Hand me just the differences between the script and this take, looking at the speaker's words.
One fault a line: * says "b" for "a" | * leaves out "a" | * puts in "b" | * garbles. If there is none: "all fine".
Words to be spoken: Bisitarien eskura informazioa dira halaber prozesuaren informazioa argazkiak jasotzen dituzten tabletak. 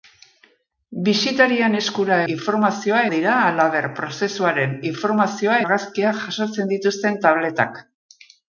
all fine